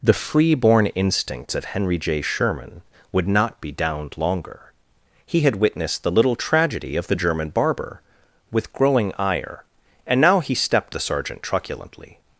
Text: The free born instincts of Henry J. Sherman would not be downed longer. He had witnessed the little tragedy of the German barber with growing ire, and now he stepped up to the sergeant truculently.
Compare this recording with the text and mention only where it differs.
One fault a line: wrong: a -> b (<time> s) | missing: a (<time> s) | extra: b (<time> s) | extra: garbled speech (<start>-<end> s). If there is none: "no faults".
missing: up to (10.9 s)